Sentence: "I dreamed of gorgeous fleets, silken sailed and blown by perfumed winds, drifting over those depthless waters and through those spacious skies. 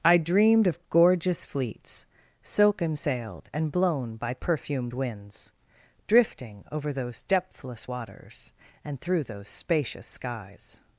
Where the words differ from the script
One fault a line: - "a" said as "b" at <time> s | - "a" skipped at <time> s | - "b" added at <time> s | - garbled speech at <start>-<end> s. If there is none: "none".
none